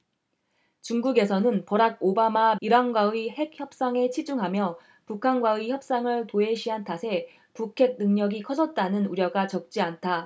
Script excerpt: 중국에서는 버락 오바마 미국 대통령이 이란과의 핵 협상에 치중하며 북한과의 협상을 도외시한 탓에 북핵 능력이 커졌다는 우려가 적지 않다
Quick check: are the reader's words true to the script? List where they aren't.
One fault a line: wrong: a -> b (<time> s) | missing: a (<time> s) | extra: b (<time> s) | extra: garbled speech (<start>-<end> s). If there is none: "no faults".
missing: 미국 대통령이 (2.5 s)